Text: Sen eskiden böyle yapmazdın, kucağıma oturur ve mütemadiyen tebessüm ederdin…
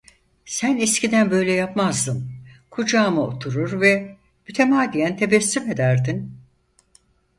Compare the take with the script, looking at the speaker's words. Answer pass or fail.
pass